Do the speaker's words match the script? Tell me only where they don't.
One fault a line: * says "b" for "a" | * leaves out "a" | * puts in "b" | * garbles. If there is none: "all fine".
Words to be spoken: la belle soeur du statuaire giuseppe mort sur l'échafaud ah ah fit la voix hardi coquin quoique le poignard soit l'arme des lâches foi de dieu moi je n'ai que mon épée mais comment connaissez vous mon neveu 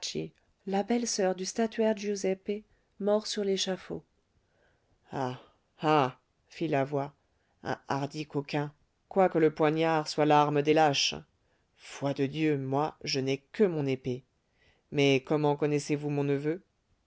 * puts in "un"